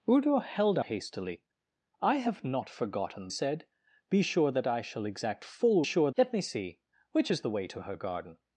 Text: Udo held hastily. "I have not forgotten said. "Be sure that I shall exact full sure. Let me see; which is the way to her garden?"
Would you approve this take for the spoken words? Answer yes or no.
yes